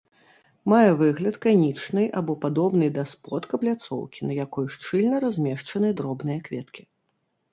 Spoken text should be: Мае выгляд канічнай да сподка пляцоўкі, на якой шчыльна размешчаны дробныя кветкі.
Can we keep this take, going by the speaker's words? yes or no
no